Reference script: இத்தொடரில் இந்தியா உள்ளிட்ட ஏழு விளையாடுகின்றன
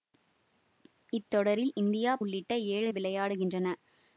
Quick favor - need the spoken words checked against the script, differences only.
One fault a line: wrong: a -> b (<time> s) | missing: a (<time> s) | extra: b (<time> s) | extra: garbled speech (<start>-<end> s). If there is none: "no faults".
no faults